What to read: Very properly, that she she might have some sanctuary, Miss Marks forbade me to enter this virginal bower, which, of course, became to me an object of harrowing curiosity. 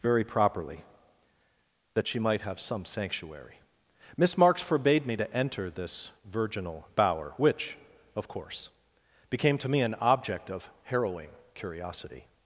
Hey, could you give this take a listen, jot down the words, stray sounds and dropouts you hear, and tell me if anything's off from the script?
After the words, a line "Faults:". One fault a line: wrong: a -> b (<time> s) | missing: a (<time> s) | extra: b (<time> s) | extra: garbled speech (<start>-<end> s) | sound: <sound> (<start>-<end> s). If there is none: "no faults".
Very properly, that she might have some sanctuary, Miss Marks forbade me to enter this virginal bower, which, of course, became to me an object of harrowing curiosity.
Faults:
missing: she (2.2 s)